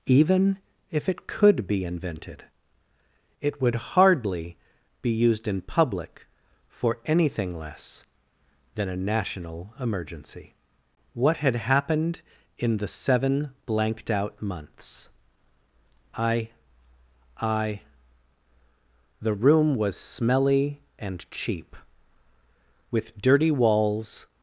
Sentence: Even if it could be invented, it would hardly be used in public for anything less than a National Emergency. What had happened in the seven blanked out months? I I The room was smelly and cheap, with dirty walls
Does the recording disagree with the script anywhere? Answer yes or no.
no